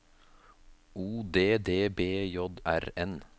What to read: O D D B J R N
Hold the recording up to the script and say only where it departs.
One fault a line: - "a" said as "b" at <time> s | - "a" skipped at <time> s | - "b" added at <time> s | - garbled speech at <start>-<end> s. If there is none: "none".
none